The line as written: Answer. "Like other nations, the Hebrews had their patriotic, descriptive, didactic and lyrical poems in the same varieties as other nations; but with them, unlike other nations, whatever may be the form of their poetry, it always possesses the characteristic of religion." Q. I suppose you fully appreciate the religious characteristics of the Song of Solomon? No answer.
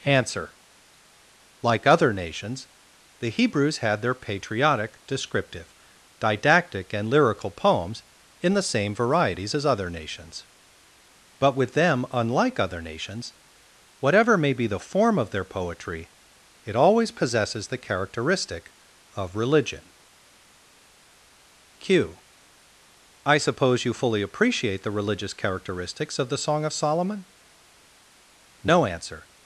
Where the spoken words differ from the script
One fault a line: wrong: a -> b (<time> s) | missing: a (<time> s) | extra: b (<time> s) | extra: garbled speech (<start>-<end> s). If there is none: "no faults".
no faults